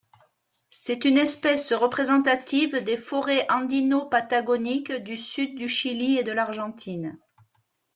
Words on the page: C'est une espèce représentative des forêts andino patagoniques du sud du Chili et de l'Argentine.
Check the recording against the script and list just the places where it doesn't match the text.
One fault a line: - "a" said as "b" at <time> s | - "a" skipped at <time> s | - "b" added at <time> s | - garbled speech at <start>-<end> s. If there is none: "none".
none